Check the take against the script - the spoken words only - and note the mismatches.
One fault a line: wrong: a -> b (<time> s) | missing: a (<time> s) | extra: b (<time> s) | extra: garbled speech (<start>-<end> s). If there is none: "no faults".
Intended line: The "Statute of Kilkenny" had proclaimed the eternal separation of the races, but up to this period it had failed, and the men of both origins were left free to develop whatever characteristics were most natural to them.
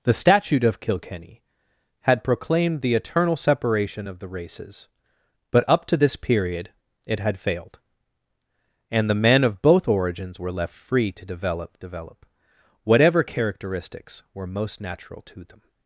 extra: develop (11.8 s)